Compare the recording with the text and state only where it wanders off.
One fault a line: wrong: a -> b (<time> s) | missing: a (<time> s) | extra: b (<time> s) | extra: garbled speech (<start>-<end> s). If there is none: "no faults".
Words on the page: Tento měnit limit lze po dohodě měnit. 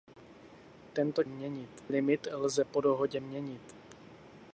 no faults